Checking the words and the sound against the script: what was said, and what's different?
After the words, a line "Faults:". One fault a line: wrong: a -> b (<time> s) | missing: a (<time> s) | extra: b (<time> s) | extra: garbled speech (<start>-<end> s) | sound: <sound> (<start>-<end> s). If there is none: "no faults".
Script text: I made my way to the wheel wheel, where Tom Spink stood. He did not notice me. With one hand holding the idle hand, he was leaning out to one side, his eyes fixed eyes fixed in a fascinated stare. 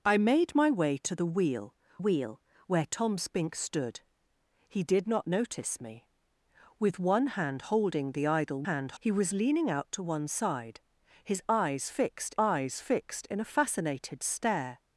I made my way to the wheel wheel, where Tom Spink stood. He did not notice me. With one hand holding the idle hand, he was leaning out to one side, his eyes fixed eyes fixed in a fascinated stare.
Faults:
no faults